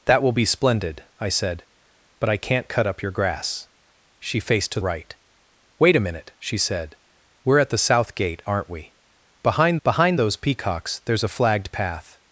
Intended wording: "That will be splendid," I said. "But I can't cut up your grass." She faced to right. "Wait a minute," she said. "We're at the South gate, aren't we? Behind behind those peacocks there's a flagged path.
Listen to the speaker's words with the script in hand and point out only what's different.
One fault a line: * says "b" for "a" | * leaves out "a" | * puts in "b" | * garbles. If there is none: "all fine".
all fine